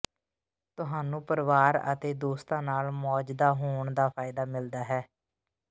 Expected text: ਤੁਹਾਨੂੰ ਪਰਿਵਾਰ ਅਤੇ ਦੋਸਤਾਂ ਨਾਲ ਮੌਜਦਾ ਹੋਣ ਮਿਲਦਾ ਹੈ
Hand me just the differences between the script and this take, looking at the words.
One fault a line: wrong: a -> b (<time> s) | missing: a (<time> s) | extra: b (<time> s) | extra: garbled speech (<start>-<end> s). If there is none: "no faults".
extra: ਦਾ ਫਾਇਦਾ (3.9 s)